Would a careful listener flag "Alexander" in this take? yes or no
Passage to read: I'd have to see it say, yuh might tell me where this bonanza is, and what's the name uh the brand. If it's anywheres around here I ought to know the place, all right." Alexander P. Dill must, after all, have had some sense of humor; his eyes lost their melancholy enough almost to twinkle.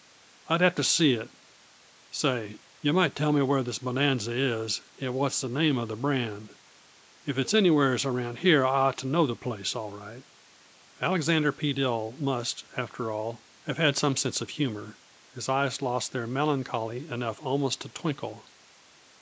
no